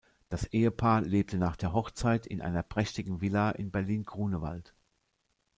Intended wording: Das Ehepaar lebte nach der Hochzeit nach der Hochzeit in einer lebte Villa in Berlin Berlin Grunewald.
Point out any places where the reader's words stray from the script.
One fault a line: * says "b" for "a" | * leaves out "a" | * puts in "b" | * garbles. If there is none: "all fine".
* leaves out "nach der Hochzeit"
* says "prächtigen" for "lebte"
* leaves out "Berlin"